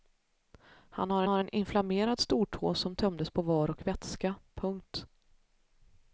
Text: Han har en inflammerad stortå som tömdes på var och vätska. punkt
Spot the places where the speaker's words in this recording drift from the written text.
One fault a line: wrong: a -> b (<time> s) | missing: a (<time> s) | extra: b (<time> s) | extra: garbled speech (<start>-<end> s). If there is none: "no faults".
extra: har (1.3 s)